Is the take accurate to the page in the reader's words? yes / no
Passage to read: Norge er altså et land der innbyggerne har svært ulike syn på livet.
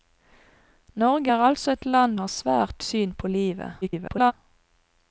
no